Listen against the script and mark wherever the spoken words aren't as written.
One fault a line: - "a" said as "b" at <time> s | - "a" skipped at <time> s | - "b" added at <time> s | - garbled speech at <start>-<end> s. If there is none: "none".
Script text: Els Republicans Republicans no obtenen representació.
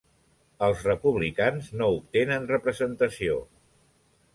- "Republicans" skipped at 1.7 s